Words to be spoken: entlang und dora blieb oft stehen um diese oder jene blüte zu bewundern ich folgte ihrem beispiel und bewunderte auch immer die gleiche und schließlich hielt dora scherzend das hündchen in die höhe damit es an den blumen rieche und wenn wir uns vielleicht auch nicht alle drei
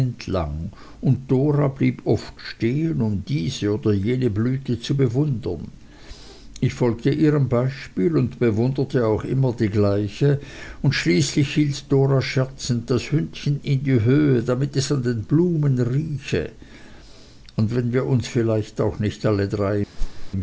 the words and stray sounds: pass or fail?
fail